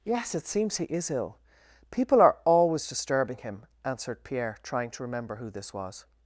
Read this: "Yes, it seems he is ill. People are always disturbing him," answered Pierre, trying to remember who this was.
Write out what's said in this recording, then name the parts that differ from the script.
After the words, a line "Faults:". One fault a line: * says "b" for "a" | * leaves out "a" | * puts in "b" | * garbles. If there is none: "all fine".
"Yes, it seems he is ill. People are always disturbing him," answered Pierre, trying to remember who this was.
Faults:
all fine